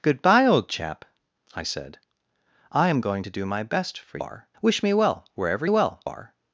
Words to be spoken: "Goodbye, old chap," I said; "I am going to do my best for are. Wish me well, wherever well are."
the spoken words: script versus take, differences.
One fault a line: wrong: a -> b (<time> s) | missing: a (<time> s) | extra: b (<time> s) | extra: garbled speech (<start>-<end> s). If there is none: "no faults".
no faults